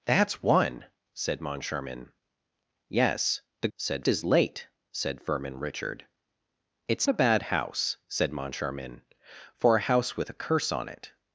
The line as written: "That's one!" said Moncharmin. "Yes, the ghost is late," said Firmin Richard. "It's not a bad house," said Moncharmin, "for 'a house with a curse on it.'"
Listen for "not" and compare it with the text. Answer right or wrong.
wrong